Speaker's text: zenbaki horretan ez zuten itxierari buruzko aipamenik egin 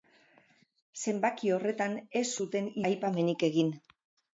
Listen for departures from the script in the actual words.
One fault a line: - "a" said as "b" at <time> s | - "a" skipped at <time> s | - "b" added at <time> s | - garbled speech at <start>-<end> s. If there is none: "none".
- "itxierari buruzko" skipped at 2.7 s